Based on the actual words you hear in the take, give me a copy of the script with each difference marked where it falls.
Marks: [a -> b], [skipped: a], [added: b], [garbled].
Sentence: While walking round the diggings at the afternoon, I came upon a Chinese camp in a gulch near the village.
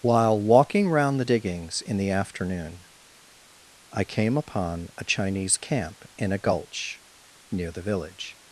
While walking round the diggings [at -> in] the afternoon, I came upon a Chinese camp in a gulch near the village.